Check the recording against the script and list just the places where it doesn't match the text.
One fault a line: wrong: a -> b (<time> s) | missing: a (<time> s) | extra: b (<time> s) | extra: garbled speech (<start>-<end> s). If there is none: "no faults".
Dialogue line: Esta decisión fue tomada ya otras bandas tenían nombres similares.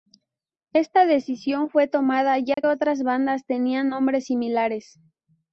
no faults